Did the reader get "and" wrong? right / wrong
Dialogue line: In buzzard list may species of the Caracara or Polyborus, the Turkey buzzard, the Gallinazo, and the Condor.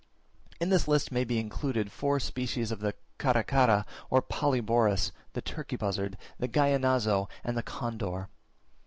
right